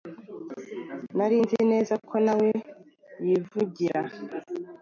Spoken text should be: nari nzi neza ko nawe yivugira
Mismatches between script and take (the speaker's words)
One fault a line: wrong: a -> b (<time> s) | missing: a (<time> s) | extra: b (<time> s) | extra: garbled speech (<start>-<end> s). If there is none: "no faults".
no faults